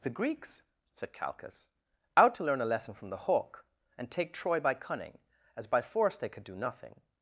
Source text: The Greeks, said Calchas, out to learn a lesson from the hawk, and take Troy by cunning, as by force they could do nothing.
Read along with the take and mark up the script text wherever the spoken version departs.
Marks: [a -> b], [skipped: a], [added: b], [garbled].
The Greeks, said Calchas, out to learn a lesson from the hawk, and take Troy by cunning, as by force they could do nothing.